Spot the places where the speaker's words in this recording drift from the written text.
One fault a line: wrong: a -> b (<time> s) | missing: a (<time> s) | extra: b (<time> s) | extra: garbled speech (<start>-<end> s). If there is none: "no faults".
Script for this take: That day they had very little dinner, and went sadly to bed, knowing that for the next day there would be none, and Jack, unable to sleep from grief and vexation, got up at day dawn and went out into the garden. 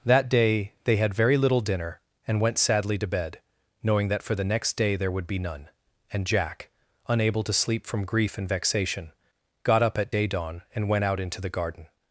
no faults